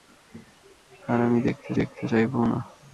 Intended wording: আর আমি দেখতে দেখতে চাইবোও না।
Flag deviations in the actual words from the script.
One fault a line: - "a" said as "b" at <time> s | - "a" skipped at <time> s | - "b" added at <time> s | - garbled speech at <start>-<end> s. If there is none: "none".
none